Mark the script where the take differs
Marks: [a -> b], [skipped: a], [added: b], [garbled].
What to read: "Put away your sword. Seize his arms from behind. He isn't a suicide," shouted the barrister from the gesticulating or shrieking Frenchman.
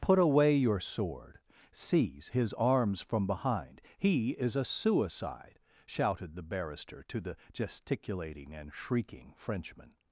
"Put away your sword. Seize his arms from behind. He [isn't -> is] a suicide," shouted the barrister [from -> to] the gesticulating [or -> and] shrieking Frenchman.